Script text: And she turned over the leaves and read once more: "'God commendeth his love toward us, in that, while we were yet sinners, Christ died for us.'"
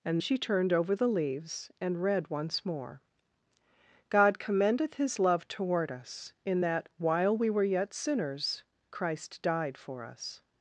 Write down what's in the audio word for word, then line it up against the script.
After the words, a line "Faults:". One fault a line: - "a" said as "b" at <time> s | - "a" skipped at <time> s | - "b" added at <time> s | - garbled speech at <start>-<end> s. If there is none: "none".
And she turned over the leaves and read once more: "'God commendeth his love toward us, in that, while we were yet sinners, Christ died for us.'"
Faults:
none